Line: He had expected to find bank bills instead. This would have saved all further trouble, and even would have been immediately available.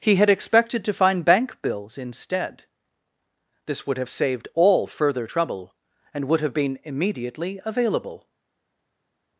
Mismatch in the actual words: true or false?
true